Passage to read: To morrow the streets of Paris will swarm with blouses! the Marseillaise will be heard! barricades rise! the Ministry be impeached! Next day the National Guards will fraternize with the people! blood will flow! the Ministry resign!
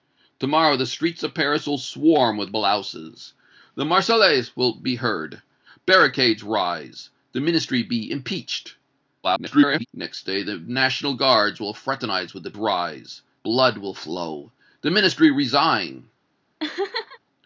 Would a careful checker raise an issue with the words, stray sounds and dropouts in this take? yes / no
yes